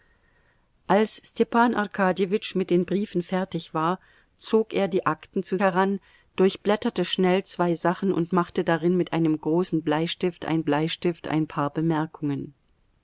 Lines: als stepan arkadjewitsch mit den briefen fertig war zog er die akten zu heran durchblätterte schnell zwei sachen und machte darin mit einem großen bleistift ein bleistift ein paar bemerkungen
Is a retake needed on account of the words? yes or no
no